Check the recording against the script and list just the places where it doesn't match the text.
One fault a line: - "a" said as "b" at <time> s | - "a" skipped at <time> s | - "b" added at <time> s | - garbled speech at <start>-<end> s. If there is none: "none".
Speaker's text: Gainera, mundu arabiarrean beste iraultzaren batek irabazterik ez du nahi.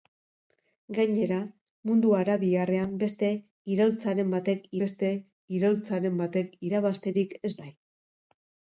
- "beste iraultzaren batek" added at 4.8 s
- "du" skipped at 7.6 s